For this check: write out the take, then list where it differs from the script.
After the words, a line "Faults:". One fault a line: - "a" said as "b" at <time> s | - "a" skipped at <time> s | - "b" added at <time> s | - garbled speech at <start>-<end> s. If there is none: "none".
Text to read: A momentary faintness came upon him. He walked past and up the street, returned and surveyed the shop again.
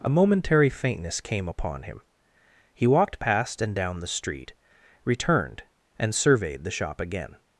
A momentary faintness came upon him. He walked past and down the street, returned and surveyed the shop again.
Faults:
- "up" said as "down" at 3.7 s